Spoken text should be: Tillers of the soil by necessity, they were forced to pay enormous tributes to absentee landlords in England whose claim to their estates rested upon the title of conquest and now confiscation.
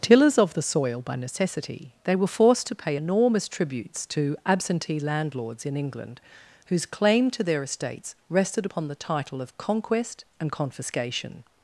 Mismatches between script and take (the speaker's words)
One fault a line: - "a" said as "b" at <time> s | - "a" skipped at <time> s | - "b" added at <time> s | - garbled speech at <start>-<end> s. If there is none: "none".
- "now" skipped at 10.5 s